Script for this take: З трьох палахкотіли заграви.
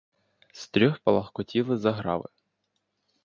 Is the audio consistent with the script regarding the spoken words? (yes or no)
yes